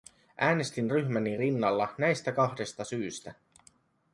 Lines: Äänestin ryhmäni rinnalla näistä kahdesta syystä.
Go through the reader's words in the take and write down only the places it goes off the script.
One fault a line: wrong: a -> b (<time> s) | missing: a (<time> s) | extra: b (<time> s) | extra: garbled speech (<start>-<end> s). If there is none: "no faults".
no faults